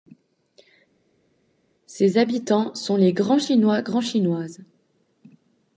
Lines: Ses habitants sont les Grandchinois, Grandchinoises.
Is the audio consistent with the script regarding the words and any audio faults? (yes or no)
yes